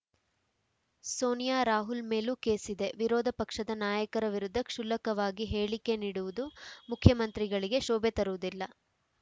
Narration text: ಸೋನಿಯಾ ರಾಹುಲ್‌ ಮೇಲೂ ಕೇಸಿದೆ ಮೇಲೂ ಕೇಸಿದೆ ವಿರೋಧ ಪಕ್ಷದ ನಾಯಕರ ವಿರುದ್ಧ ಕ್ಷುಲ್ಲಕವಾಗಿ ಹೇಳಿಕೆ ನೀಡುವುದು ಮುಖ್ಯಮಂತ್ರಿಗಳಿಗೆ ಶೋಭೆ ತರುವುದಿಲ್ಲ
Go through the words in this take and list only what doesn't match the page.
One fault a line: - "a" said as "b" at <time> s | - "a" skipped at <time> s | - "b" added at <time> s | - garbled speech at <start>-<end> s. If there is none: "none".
- "ಮೇಲೂ ಕೇಸಿದೆ" skipped at 2.9 s